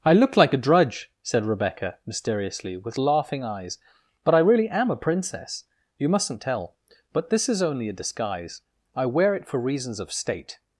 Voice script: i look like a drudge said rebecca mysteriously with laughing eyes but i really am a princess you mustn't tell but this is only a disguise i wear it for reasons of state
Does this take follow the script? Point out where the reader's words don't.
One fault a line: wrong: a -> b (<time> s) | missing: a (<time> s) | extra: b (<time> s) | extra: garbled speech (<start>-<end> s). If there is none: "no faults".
no faults